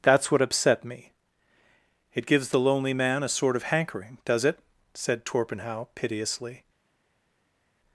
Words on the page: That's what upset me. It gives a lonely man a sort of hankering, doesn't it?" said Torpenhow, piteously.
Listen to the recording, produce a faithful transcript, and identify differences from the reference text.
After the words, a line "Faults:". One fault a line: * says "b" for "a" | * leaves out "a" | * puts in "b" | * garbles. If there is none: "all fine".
That's what upset me. It gives the lonely man a sort of hankering, does it?" said Torpenhow, piteously.
Faults:
* says "the" for "a"
* says "does" for "doesn't"